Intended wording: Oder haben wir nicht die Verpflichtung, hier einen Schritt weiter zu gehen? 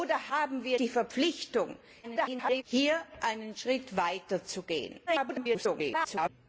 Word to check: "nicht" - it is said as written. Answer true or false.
false